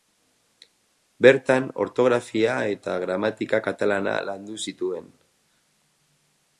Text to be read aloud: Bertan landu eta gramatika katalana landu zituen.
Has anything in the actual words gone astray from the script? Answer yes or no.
yes